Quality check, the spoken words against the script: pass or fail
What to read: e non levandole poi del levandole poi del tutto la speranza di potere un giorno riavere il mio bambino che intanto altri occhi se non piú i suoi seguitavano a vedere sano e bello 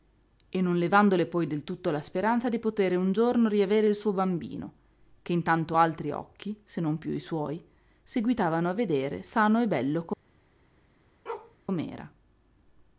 fail